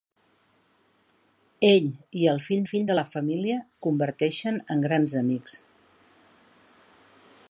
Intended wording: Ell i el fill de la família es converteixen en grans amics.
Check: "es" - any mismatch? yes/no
yes